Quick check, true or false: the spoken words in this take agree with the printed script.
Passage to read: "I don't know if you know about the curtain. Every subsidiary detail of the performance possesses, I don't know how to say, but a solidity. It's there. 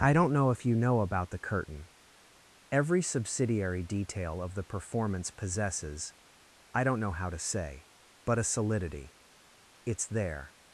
true